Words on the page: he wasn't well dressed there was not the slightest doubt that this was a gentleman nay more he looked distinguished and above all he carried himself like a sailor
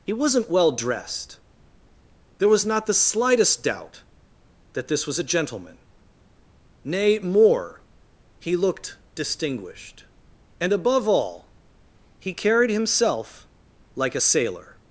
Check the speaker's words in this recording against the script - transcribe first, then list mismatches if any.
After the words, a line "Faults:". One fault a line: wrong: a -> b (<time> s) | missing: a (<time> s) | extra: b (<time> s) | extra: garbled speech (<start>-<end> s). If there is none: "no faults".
he wasn't well dressed there was not the slightest doubt that this was a gentleman nay more he looked distinguished and above all he carried himself like a sailor
Faults:
no faults